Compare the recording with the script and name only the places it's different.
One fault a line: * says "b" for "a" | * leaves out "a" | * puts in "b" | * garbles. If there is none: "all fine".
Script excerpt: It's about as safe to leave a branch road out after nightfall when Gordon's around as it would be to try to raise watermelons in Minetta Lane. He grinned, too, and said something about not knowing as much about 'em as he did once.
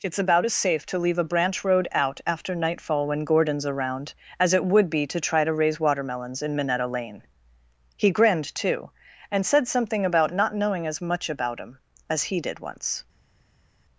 all fine